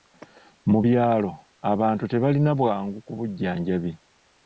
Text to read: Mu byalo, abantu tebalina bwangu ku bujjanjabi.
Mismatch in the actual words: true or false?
false